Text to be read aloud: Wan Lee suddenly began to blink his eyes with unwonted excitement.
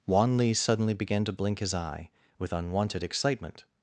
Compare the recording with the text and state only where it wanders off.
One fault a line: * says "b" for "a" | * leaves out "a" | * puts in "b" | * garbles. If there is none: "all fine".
* says "eye" for "eyes"